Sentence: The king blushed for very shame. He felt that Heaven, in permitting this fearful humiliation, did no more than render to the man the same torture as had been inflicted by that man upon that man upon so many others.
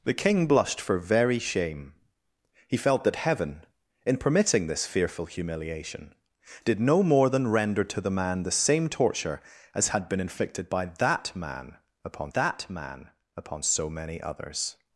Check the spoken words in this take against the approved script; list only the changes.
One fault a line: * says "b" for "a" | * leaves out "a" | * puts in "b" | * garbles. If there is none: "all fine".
all fine